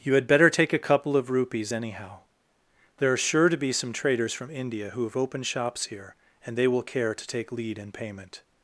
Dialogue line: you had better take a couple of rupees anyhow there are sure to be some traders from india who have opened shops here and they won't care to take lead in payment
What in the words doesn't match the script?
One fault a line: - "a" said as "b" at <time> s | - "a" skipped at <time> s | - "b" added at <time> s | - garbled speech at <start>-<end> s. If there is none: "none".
- "won't" said as "will" at 6.7 s